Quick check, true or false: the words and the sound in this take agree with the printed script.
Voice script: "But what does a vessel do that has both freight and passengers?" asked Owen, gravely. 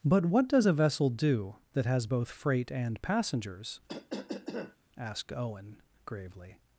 false